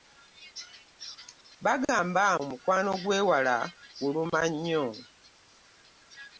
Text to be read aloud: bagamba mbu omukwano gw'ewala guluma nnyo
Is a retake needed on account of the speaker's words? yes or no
yes